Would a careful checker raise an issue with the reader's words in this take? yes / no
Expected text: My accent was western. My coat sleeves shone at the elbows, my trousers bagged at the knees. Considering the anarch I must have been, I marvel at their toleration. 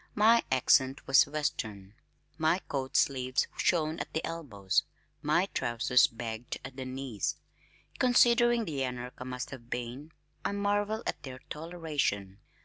no